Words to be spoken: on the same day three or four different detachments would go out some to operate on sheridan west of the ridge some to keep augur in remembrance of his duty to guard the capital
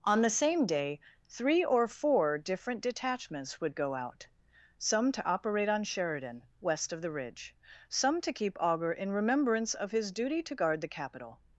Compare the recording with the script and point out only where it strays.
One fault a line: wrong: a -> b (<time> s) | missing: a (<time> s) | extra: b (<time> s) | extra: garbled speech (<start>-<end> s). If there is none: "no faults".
no faults